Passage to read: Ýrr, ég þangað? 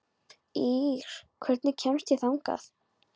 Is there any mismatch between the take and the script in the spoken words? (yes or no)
yes